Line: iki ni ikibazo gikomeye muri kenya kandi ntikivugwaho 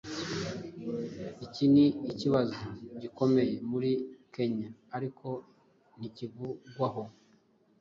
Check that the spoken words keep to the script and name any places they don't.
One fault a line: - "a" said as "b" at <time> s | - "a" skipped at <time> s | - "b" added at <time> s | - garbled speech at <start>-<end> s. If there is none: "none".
- "kandi" said as "ariko" at 5.0 s